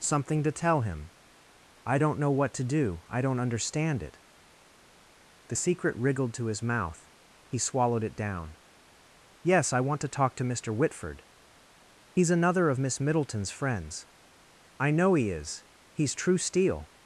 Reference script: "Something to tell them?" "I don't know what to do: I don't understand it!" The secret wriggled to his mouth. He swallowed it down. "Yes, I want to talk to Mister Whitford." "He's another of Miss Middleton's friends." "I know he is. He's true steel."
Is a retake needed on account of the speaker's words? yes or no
yes